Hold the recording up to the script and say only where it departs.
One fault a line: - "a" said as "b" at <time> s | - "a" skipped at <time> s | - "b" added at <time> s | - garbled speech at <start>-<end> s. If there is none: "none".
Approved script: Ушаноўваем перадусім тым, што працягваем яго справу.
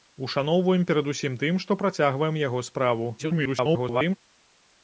- garbled speech at 3.2-4.2 s